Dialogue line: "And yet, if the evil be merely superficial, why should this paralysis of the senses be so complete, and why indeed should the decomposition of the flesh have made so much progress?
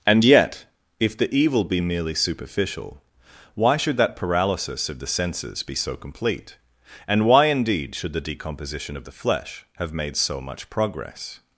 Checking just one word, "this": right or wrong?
wrong